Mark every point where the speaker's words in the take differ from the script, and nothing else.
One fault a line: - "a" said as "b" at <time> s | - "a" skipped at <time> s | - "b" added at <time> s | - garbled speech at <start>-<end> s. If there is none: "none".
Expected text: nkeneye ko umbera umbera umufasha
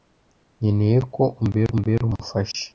none